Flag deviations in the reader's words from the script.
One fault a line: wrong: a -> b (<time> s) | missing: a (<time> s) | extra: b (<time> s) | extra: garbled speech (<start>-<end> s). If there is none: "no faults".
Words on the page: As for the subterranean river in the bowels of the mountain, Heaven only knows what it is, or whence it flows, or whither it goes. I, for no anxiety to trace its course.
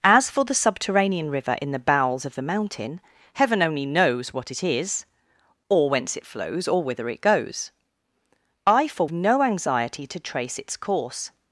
no faults